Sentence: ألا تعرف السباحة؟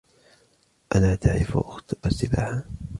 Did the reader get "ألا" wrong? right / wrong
right